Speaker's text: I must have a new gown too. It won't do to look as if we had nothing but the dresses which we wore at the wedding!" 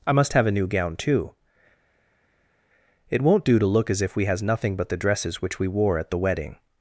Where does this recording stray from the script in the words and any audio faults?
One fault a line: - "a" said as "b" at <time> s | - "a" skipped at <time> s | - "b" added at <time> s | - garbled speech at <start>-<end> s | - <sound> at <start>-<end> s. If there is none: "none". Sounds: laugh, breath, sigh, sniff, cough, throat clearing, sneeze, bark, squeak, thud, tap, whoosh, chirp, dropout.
- "had" said as "has" at 4.2 s